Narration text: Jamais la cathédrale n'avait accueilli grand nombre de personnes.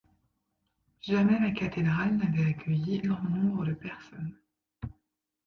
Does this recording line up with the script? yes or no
yes